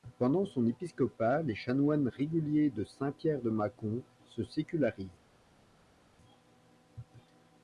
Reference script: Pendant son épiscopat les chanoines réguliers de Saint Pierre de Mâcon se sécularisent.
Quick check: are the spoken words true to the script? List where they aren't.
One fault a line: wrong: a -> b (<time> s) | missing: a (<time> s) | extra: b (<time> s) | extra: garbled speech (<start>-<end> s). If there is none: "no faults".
no faults